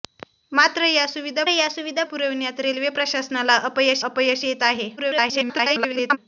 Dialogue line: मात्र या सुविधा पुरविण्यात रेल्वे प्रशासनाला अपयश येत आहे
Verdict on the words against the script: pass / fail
fail